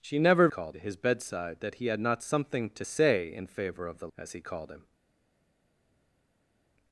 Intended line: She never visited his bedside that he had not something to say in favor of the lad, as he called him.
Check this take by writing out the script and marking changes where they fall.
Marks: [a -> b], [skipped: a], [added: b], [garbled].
She never [visited -> called] his bedside that he had not something to say in favor of the [skipped: lad,] as he called him.